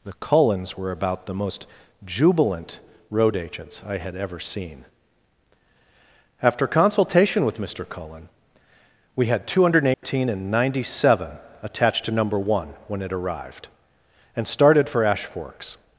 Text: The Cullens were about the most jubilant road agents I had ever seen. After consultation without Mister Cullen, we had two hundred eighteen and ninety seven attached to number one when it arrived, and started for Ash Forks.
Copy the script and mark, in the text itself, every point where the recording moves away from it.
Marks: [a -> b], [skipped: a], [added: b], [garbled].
The Cullens were about the most jubilant road agents I had ever seen. After consultation [without -> with] Mister Cullen, we had two hundred eighteen and ninety seven attached to number one when it arrived, and started for Ash Forks.